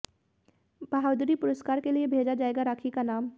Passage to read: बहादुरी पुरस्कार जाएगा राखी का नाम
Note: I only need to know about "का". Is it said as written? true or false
true